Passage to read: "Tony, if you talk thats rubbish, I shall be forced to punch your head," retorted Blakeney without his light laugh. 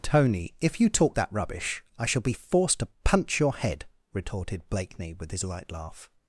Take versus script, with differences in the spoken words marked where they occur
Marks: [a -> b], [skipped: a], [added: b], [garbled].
"Tony, if you talk [thats -> that] rubbish, I shall be forced to punch your head," retorted Blakeney [without -> with] his light laugh.